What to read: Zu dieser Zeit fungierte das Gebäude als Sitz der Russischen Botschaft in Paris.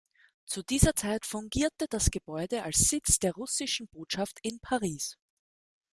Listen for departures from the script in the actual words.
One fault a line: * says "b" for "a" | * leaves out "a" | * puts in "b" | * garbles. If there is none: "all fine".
all fine